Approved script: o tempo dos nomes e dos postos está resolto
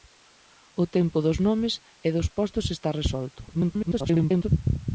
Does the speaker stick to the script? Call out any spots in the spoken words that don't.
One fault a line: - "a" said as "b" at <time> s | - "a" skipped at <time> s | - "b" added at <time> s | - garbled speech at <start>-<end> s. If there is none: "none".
- garbled speech at 3.5-4.5 s